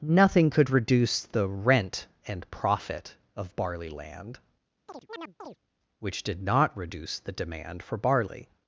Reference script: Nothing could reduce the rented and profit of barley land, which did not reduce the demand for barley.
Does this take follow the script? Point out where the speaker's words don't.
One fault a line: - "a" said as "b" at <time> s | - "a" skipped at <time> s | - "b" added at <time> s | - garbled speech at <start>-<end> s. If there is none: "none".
- "rented" said as "rent" at 1.5 s